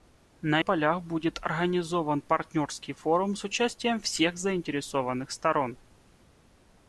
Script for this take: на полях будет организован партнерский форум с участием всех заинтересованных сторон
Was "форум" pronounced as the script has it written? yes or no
yes